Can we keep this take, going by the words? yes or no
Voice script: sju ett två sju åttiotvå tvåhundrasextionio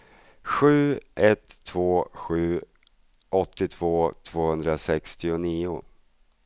yes